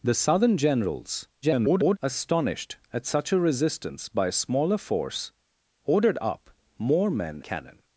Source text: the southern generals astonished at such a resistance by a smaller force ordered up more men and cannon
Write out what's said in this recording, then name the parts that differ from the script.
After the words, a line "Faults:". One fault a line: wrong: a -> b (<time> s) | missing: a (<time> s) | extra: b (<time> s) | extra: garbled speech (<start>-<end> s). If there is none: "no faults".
the southern generals [garbled] astonished at such a resistance by a smaller force ordered up more men cannon
Faults:
extra: garbled speech (1.4-2.0 s)
missing: and (7.4 s)